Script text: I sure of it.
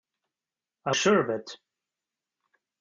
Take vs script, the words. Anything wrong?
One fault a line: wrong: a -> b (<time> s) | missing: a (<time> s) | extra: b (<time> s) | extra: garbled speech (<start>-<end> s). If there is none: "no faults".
no faults